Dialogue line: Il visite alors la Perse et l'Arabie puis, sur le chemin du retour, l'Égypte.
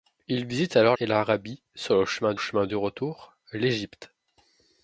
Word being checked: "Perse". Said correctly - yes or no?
no